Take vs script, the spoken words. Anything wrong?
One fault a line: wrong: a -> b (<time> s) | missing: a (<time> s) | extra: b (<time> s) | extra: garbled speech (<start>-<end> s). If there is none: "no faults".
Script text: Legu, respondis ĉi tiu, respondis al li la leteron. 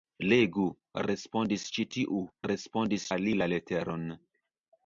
no faults